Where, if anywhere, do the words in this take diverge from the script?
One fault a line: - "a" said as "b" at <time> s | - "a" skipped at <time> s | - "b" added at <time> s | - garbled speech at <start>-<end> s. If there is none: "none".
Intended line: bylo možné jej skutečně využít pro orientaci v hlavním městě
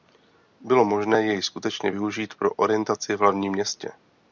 none